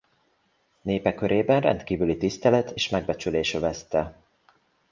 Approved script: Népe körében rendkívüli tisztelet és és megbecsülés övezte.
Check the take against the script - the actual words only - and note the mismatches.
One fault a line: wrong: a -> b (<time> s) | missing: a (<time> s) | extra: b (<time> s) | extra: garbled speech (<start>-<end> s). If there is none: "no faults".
missing: és (2.9 s)